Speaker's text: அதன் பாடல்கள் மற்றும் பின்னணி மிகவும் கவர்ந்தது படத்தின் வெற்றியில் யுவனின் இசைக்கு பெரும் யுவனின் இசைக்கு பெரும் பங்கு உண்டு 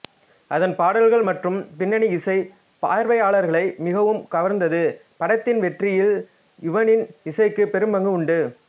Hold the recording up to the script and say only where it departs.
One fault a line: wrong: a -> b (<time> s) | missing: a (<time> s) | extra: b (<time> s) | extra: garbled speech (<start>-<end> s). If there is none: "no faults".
extra: இசை பார்வையாளர்களை (2.2 s)
missing: யுவனின் இசைக்கு பெரும் (7.9 s)